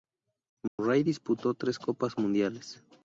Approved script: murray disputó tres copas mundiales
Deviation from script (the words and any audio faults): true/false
true